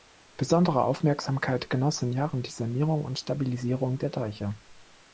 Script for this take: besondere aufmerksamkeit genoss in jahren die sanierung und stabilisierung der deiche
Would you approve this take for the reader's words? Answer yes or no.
yes